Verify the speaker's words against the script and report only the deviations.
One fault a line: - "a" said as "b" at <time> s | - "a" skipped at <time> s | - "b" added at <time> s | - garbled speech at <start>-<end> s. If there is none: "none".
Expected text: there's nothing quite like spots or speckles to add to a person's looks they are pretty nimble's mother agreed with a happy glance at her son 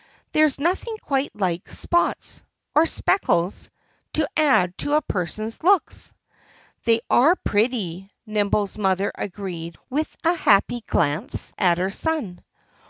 none